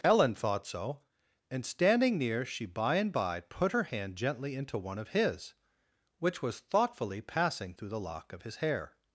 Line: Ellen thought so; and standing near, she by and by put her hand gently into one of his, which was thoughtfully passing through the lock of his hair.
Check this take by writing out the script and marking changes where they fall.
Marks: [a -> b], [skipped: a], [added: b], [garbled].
Ellen thought so; and standing near, she by and by put her hand gently into one of his, which was thoughtfully passing through the lock of his hair.